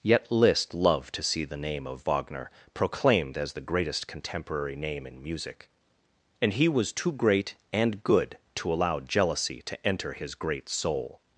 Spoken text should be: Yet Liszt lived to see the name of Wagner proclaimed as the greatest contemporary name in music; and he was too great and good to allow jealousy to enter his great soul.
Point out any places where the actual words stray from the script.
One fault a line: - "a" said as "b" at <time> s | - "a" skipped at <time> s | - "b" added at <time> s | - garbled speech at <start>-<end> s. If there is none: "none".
- "lived" said as "loved" at 0.7 s